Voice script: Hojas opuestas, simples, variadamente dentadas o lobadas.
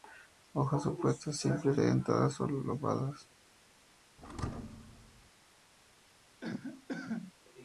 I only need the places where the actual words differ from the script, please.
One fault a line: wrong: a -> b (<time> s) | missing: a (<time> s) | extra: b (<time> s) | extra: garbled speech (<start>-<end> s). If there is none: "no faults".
missing: variadamente (1.8 s)